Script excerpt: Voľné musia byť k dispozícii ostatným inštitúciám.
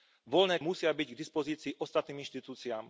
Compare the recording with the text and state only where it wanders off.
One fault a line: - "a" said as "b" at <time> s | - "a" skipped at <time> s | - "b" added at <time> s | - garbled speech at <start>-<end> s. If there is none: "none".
none